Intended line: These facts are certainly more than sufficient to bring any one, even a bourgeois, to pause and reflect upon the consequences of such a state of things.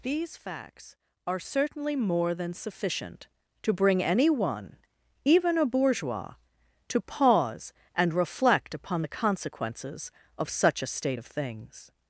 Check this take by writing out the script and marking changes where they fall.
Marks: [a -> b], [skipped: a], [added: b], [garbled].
These facts are certainly more than sufficient to bring any one, even a bourgeois, to pause and reflect upon the consequences of such a state of things.